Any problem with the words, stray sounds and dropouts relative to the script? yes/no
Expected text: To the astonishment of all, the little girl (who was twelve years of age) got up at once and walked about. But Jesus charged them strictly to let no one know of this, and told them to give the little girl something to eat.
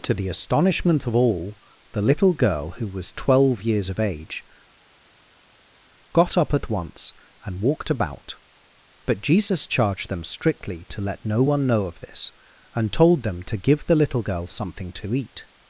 no